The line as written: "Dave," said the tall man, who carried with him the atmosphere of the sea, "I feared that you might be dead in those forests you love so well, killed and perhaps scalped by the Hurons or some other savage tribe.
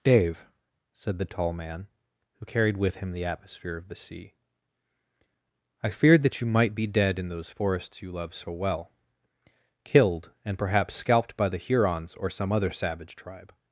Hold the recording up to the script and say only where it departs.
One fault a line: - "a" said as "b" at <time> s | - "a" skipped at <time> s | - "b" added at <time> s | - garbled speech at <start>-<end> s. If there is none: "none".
none